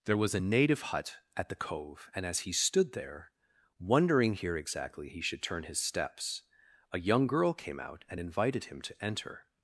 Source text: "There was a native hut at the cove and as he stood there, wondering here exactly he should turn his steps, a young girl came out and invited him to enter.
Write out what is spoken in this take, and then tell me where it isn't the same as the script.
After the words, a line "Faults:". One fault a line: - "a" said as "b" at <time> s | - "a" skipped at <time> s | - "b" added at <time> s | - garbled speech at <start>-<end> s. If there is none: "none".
"There was a native hut at the cove and as he stood there, wondering here exactly he should turn his steps, a young girl came out and invited him to enter.
Faults:
none